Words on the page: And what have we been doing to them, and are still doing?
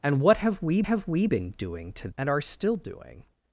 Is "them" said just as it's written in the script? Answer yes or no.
no